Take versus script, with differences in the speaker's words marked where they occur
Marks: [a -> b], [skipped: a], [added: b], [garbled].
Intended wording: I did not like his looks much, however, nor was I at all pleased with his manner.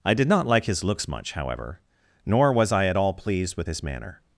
I did not like his looks much, however, nor was I at all pleased with his manner.